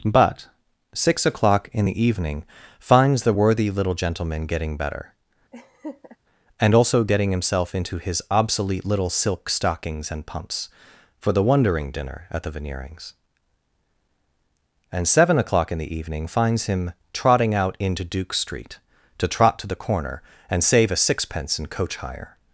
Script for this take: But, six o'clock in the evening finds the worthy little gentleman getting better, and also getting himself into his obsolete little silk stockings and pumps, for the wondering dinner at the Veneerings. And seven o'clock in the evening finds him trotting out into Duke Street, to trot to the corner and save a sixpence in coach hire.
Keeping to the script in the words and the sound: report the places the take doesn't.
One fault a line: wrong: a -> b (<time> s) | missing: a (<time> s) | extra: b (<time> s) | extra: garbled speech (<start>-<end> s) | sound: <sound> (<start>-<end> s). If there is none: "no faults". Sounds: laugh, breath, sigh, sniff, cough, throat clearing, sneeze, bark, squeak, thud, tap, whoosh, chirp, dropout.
sound: laugh (5.5-6.2 s)